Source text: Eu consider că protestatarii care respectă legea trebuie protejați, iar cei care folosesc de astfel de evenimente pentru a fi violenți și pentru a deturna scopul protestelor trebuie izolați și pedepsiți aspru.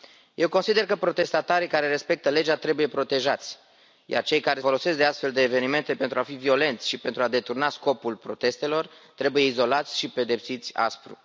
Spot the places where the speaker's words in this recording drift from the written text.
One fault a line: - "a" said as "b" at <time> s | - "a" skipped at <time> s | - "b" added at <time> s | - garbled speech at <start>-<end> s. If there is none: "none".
none